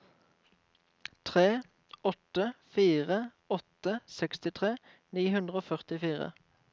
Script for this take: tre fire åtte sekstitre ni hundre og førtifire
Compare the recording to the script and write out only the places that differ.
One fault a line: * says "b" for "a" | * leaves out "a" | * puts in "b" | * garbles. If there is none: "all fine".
* puts in "åtte"